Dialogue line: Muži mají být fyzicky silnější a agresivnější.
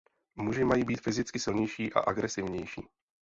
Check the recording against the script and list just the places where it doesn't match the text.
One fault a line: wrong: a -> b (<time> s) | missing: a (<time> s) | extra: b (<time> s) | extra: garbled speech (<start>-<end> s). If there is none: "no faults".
no faults